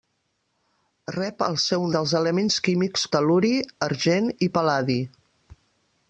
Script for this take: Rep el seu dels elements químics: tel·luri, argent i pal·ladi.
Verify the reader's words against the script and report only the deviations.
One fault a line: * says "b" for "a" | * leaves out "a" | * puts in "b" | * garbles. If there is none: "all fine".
all fine